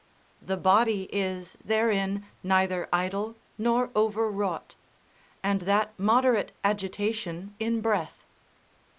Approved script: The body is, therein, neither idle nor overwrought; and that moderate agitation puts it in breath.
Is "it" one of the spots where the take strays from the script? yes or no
yes